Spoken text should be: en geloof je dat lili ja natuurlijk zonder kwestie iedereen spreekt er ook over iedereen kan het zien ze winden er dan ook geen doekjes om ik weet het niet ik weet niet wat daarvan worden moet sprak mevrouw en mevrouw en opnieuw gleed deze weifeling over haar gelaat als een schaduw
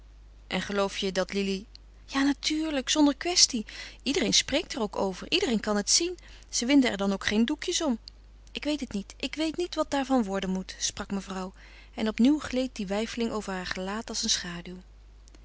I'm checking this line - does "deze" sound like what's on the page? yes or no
no